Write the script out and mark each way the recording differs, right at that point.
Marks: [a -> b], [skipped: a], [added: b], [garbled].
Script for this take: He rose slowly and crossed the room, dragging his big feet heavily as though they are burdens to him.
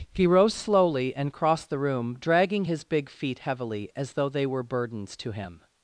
He rose slowly and crossed the room, dragging his big feet heavily as though they [are -> were] burdens to him.